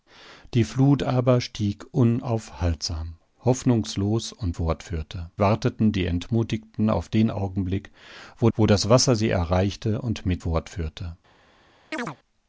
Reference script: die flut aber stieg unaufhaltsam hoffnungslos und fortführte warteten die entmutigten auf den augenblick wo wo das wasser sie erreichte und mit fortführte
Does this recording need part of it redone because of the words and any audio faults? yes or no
yes